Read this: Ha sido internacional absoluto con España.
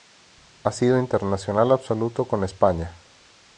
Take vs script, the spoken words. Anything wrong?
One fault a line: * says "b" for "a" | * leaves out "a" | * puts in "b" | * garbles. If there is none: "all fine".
all fine